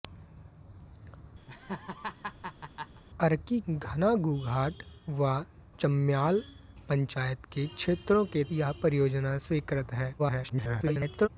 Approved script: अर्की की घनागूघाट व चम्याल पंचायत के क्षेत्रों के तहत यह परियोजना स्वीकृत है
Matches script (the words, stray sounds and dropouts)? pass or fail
fail